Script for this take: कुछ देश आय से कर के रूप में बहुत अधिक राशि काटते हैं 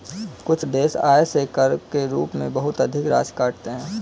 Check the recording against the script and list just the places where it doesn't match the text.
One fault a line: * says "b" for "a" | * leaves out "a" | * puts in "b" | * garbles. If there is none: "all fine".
all fine